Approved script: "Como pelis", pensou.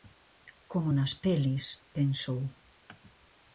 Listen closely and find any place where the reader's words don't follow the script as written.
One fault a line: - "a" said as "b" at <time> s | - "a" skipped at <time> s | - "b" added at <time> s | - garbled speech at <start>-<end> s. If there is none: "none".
- "nas" added at 1.0 s